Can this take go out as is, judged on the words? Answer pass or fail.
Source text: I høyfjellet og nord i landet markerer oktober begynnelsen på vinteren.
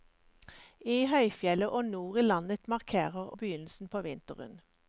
fail